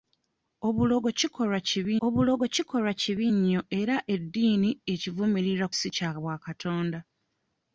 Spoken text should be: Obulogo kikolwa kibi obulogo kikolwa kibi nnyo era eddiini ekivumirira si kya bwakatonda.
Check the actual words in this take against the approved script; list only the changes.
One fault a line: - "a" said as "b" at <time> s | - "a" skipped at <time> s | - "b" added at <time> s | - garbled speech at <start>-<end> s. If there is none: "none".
none